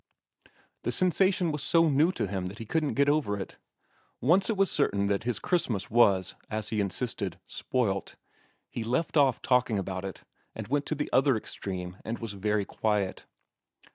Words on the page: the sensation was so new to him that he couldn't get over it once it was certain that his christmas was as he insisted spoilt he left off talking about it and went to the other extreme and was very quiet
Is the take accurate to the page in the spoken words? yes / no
yes